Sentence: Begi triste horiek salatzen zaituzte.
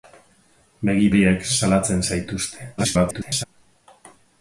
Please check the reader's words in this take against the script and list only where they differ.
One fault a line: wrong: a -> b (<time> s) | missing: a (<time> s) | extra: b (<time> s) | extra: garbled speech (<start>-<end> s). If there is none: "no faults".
missing: triste (1.1 s)
extra: garbled speech (2.8-3.4 s)